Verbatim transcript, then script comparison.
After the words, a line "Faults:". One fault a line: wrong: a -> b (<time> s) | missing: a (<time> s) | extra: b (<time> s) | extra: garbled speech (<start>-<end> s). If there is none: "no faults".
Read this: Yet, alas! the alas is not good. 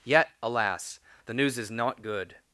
Yet, alas! the news is not good.
Faults:
wrong: alas -> news (1.3 s)